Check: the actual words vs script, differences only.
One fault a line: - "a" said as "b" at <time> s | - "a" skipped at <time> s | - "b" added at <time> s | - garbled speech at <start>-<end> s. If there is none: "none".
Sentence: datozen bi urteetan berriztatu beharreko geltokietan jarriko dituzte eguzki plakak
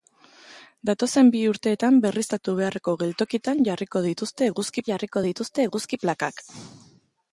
- "jarriko dituzte eguzki" added at 4.9 s